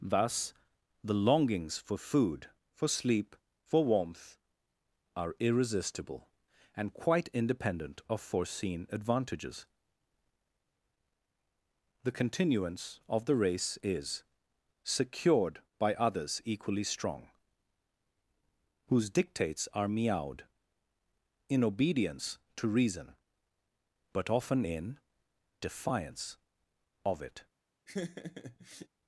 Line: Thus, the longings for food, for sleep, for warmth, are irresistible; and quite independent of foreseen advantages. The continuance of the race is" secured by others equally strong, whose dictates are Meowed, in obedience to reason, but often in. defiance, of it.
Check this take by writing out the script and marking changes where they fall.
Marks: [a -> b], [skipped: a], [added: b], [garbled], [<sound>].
Thus, the longings for food, for sleep, for warmth, are irresistible; and quite independent of foreseen advantages. The continuance of the race is" secured by others equally strong, whose dictates are Meowed, in obedience to reason, but often in. defiance, of it. [laugh]